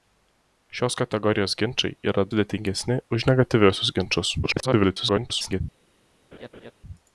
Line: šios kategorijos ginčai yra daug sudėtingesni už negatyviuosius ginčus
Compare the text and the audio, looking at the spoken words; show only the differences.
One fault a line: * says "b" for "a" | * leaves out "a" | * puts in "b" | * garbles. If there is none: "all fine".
* leaves out "daug"
* garbles